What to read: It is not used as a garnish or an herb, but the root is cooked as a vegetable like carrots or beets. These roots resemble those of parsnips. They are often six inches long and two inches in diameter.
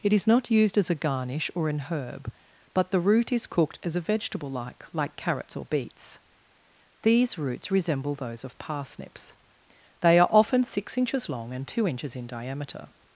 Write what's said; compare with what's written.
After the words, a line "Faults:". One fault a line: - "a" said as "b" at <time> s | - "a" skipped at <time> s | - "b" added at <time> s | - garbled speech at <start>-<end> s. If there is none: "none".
It is not used as a garnish or an herb, but the root is cooked as a vegetable like like carrots or beets. These roots resemble those of parsnips. They are often six inches long and two inches in diameter.
Faults:
- "like" added at 4.9 s